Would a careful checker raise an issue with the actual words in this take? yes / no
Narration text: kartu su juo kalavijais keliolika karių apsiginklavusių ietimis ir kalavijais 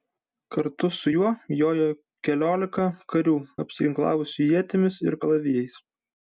yes